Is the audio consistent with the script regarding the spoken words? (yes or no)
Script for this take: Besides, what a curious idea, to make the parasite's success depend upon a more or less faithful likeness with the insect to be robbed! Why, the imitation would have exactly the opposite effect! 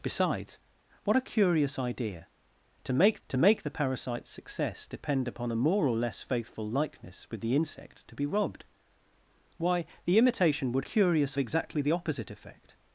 no